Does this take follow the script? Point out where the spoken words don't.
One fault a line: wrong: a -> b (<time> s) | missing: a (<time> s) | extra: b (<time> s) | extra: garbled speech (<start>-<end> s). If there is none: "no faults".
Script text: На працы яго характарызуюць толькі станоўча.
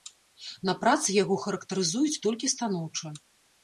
no faults